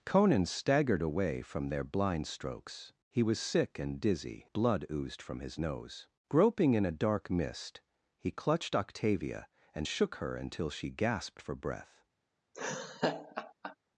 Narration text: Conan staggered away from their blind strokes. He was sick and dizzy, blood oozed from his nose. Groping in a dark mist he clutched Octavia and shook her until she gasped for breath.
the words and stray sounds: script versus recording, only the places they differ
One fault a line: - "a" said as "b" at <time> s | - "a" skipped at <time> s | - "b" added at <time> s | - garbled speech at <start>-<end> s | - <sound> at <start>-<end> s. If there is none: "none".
- laugh at 12.5-13.8 s